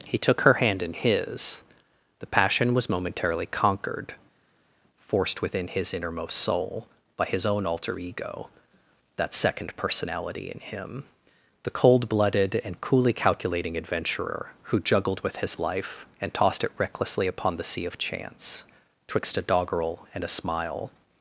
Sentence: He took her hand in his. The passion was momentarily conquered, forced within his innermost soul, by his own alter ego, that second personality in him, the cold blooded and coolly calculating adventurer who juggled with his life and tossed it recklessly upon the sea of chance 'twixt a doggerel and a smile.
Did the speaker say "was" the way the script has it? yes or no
yes